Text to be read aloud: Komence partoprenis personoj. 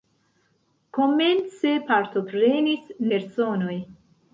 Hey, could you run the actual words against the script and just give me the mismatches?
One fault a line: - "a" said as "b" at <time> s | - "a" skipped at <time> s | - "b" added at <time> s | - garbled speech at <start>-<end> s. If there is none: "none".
none